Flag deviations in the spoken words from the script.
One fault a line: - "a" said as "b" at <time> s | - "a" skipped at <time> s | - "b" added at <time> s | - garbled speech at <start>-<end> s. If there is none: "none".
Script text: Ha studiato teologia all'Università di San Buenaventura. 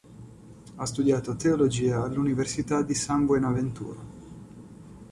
none